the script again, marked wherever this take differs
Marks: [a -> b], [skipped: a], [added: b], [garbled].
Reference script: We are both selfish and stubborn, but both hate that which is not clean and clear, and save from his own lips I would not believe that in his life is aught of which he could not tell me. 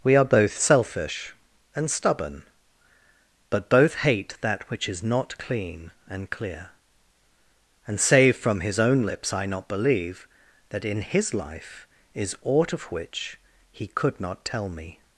We are both selfish and stubborn, but both hate that which is not clean and clear, and save from his own lips I [skipped: would] not believe that in his life is aught of which he could not tell me.